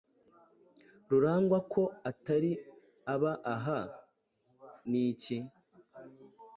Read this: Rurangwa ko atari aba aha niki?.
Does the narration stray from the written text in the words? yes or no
no